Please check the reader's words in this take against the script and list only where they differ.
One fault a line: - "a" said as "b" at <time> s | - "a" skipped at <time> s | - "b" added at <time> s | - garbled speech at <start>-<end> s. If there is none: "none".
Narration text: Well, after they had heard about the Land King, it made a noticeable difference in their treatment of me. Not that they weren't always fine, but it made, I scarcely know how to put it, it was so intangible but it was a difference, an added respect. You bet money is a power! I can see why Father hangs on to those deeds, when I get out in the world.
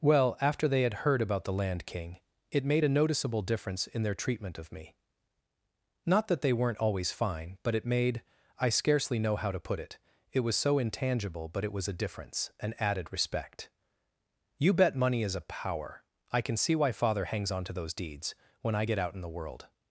none